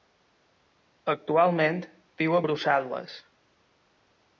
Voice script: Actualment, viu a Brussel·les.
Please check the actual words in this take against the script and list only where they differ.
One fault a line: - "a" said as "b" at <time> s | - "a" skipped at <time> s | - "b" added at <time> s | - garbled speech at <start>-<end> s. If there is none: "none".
none